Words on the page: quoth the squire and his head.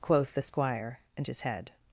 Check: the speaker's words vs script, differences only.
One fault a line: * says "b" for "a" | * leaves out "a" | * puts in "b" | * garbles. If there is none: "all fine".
all fine